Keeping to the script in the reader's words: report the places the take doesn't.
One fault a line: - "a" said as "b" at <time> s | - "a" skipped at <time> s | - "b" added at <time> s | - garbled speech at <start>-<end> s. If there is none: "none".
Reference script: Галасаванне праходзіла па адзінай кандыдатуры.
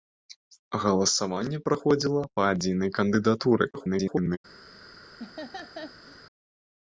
- garbled speech at 3.7-4.4 s